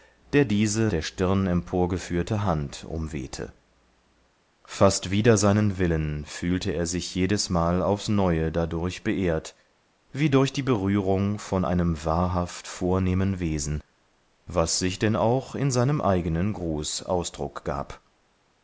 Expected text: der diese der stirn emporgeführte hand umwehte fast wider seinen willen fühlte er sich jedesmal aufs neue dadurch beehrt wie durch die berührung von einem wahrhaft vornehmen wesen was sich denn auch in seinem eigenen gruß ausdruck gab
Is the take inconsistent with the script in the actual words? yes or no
no